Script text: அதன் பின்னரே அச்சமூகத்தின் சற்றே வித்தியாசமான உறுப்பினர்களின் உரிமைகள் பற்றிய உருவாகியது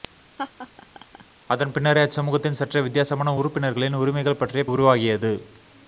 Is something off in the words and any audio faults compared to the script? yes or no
yes